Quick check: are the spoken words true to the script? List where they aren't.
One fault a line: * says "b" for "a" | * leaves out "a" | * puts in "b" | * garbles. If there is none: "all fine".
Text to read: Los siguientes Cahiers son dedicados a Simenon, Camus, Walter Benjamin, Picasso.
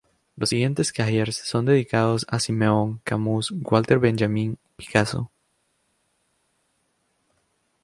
all fine